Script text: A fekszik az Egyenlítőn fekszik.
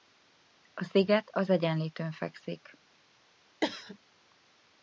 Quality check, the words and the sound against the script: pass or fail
fail